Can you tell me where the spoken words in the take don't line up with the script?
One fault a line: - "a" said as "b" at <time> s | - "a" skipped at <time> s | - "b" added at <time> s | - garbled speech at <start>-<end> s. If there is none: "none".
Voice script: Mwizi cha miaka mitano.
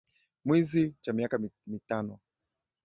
none